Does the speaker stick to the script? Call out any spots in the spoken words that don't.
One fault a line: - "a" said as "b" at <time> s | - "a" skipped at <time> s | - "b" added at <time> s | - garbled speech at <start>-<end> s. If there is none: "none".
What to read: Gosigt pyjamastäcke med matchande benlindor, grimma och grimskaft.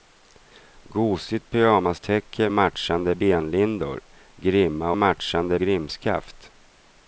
- "med" skipped at 2.5 s
- "och" said as "matchande" at 5.0 s